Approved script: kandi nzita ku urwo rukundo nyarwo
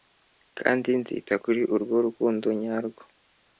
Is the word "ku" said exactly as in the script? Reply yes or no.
no